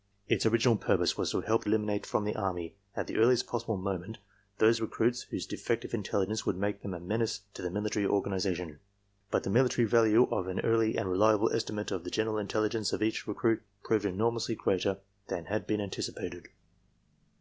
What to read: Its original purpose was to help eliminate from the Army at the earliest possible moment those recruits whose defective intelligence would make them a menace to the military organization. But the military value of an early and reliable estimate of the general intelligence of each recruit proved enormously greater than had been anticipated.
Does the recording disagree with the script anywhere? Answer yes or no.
no